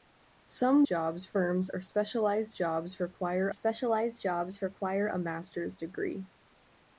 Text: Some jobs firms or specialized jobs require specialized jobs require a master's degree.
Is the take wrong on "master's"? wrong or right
right